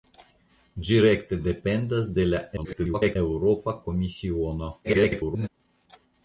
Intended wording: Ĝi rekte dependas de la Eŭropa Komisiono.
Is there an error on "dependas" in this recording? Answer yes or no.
no